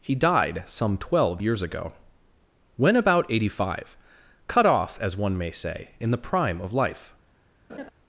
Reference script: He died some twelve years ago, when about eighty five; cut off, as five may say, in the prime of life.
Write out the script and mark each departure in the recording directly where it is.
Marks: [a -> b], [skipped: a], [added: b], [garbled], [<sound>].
He died some twelve years ago, when about eighty five; cut off, as [five -> one] may say, in the prime of life. [laugh]